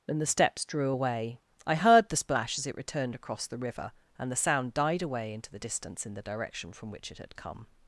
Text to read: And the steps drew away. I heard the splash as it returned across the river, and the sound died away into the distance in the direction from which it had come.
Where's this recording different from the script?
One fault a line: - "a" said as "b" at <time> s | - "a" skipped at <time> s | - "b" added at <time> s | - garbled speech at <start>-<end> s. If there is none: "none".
none